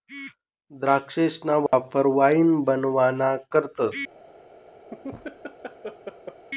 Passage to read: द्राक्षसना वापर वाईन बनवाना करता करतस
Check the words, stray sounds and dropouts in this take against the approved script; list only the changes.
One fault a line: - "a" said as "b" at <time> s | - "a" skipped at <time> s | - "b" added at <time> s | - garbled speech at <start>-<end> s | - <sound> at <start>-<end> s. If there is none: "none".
- dropout at 1.7-1.7 s
- "करता" skipped at 3.4 s
- laugh at 4.9-6.4 s